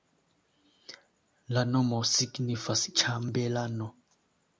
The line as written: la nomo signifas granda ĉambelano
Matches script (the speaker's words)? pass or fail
fail